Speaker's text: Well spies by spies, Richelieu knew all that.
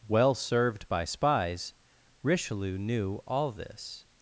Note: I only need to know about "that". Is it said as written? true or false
false